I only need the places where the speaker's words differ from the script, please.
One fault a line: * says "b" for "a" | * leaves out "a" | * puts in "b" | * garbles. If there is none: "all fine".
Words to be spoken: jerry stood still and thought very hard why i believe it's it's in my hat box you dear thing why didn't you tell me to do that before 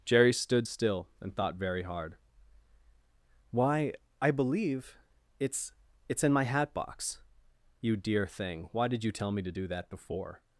* says "did" for "didn't"